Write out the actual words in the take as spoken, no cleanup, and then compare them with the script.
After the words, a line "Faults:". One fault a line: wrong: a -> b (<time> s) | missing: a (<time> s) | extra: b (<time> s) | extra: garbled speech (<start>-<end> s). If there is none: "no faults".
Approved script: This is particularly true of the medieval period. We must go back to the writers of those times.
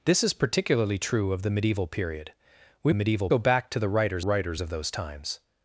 This is particularly true of the medieval period. We medieval go back to the writers writers of those times.
Faults:
wrong: must -> medieval (2.9 s)
extra: writers (4.2 s)